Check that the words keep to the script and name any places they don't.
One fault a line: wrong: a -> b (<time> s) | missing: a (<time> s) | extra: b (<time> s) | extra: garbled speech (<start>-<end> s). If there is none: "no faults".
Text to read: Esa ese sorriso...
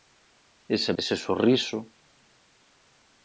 no faults